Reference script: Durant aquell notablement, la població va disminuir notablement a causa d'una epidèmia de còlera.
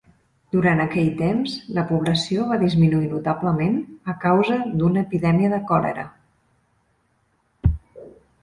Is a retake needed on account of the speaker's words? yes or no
yes